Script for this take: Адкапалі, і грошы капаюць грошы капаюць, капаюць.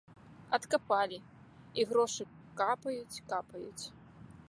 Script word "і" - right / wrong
right